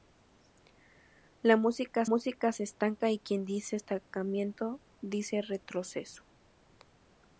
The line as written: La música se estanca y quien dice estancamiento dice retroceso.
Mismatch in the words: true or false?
true